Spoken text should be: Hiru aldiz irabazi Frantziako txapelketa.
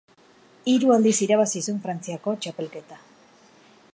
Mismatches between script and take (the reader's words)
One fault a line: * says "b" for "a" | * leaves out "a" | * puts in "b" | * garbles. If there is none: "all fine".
* puts in "zuen"